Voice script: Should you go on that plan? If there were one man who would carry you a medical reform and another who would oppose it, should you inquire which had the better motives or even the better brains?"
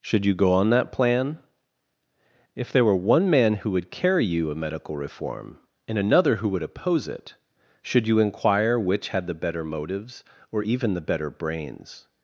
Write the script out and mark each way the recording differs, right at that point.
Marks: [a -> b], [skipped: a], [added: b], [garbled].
Should you go on that plan? If there were one man who would carry you a medical reform and another who would oppose it, should you inquire which had the better motives or even the better brains?"